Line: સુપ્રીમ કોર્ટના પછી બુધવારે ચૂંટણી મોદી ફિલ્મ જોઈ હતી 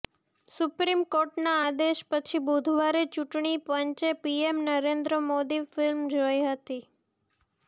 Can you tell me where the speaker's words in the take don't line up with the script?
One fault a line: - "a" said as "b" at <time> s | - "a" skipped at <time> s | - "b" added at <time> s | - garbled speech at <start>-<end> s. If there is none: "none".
- "આદેશ" added at 1.6 s
- "પંચે પીએમ નરેન્દ્ર" added at 3.6 s